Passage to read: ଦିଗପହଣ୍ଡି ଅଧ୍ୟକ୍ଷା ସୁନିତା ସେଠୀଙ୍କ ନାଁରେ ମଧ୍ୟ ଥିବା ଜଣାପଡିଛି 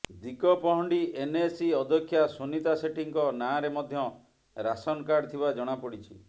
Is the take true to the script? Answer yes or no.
no